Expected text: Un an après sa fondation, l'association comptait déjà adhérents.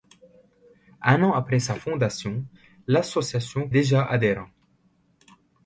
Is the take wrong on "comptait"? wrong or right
wrong